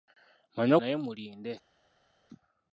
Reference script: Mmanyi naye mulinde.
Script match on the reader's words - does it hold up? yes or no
yes